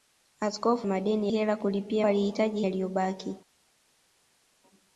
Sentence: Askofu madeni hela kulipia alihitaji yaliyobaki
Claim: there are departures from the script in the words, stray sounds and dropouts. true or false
false